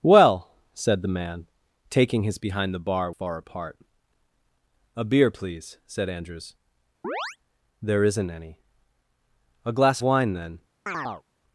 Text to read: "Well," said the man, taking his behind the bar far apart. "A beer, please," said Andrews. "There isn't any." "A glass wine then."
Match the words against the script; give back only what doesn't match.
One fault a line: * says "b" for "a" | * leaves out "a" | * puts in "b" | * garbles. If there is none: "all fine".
all fine